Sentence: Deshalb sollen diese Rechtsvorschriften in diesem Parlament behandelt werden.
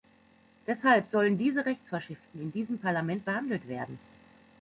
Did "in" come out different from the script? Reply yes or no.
no